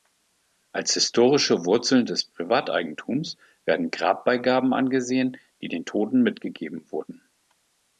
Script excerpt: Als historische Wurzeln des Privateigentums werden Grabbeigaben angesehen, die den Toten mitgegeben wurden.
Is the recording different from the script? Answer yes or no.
no